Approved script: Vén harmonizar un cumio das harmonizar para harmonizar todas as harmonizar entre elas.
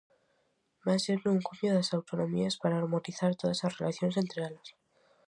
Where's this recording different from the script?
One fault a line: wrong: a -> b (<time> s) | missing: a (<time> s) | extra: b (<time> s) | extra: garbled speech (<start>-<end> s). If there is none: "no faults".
wrong: harmonizar -> sendo (1.1 s)
wrong: harmonizar -> autonomías (2.0 s)
wrong: harmonizar -> relacións (3.8 s)